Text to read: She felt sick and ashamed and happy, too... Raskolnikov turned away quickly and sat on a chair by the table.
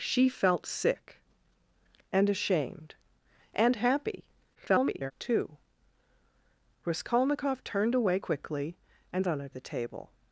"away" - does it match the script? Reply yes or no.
yes